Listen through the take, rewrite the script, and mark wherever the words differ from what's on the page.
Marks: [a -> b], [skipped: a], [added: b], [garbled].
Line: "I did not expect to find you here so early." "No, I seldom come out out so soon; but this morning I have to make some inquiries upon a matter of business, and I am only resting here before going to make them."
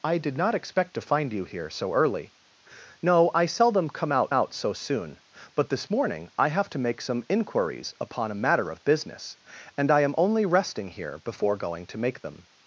"I did not expect to find you here so early." "No, I seldom come out out so soon; but this morning I have to make some inquiries upon a matter of business, and I am only resting here before going to make them."